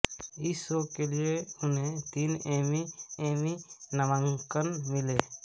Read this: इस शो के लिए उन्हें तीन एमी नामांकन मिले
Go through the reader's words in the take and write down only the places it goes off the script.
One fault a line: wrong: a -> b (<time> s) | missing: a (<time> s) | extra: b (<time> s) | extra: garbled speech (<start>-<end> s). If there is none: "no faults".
extra: एमी (3.3 s)